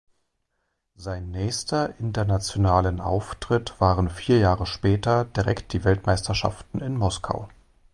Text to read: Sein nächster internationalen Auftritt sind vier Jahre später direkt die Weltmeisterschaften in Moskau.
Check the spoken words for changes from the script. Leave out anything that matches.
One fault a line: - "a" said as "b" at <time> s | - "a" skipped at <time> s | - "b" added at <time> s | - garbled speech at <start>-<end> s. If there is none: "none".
- "sind" said as "waren" at 3.8 s